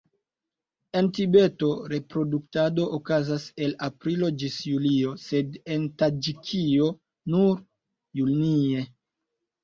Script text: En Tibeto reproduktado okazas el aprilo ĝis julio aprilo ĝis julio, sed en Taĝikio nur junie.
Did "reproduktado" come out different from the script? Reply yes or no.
no